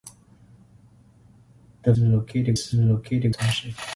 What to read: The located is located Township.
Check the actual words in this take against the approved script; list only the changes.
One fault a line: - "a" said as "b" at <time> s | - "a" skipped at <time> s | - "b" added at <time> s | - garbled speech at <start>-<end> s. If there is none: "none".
none